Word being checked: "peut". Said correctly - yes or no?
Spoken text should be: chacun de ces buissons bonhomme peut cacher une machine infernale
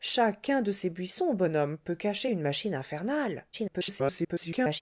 yes